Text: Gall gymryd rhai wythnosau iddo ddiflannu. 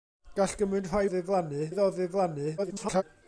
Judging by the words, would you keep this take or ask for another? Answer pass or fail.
fail